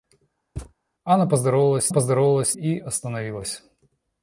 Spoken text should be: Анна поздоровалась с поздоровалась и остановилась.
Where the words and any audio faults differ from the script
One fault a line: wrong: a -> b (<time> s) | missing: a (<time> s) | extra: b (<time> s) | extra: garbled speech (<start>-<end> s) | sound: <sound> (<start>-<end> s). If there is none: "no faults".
sound: thud (0.6-0.7 s)